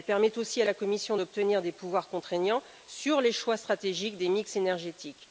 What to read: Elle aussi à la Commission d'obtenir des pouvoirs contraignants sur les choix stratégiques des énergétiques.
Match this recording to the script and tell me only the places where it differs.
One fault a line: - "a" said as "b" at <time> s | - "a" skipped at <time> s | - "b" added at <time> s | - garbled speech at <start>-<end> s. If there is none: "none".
- "permet" added at 0.1 s
- "mix" added at 4.3 s